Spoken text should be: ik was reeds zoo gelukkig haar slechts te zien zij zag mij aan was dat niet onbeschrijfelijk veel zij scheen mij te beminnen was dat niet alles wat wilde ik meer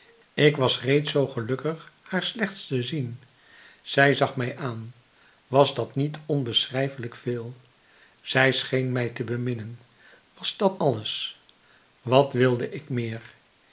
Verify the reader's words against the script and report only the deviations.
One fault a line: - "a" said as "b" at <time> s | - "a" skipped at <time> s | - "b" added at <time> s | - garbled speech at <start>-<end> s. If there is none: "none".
- "niet" skipped at 10.8 s